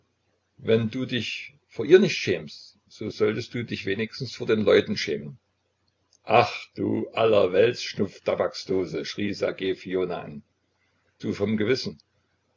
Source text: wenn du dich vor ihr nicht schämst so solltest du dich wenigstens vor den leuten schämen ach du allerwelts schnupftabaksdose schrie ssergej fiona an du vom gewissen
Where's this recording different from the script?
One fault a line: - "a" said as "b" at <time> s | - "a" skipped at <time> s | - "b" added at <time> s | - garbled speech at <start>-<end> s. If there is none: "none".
none